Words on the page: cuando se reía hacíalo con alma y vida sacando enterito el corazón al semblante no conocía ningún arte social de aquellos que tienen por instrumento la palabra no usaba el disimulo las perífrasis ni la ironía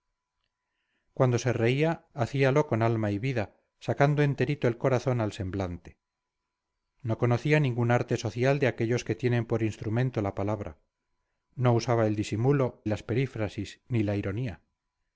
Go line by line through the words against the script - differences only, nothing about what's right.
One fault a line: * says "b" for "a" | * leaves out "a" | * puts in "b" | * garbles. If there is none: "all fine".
all fine